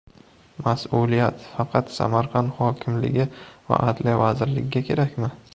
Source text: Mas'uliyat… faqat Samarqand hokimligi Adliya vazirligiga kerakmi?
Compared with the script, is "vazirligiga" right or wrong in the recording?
right